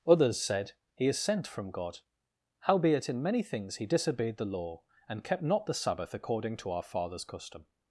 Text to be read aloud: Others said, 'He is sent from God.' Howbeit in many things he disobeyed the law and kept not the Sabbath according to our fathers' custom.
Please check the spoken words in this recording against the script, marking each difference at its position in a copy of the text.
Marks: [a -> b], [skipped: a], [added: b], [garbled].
Others said, 'He is sent from God.' Howbeit in many things he disobeyed the law and kept not the Sabbath according to our fathers' custom.